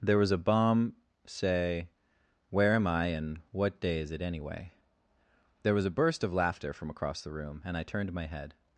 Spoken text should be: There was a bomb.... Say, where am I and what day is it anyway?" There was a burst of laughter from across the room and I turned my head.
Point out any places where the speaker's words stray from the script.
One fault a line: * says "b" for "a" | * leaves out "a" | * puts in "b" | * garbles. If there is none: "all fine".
all fine